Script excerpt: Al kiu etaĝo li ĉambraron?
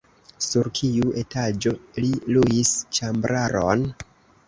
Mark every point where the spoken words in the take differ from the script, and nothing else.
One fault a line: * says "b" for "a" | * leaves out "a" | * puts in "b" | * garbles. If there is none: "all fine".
* says "Sur" for "Al"
* puts in "luis"